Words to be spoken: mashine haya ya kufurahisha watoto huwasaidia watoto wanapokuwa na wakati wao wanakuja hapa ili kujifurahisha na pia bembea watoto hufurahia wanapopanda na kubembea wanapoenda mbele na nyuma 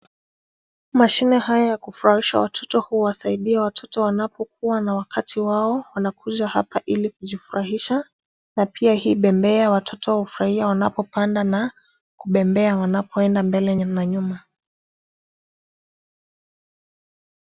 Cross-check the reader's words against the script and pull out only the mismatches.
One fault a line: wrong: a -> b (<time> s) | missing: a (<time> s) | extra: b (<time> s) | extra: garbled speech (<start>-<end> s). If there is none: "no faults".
extra: hii (8.9 s)